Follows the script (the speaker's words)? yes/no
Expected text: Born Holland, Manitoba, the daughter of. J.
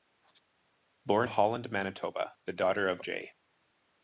yes